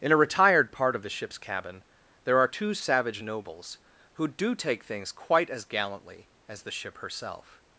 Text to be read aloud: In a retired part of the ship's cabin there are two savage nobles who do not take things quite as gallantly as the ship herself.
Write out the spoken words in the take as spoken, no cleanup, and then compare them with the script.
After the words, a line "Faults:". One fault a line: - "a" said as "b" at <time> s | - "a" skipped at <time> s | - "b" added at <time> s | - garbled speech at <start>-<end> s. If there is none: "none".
In a retired part of the ship's cabin there are two savage nobles who do take things quite as gallantly as the ship herself.
Faults:
- "not" skipped at 4.6 s